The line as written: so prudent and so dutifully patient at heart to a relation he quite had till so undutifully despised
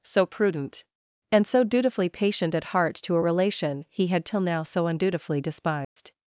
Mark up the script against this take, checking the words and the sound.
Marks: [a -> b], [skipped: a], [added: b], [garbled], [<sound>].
so prudent and so dutifully patient at heart to a relation he [skipped: quite] had till [added: now] so undutifully despised [dropout]